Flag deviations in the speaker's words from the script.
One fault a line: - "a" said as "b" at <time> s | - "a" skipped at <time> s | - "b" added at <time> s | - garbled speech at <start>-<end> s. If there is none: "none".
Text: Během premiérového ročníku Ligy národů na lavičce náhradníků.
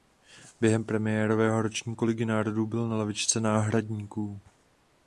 - "byl" added at 2.7 s